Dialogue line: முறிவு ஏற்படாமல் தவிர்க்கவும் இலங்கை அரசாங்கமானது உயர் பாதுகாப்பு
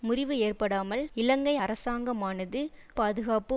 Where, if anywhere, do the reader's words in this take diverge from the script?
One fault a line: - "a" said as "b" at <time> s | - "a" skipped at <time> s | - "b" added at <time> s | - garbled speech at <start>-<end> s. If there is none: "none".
- "தவிர்க்கவும்" skipped at 1.0 s
- "உயர்" skipped at 2.6 s